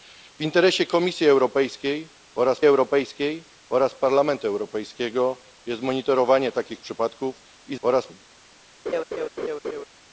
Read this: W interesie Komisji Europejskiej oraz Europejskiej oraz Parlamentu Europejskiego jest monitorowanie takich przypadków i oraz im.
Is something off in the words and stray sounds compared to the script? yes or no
yes